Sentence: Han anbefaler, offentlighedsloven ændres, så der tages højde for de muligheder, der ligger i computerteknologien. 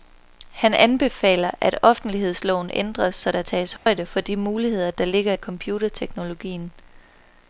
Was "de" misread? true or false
false